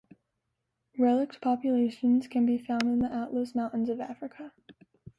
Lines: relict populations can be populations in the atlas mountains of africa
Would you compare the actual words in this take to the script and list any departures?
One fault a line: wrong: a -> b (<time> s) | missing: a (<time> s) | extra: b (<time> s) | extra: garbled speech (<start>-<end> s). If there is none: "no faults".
wrong: populations -> found (2.6 s)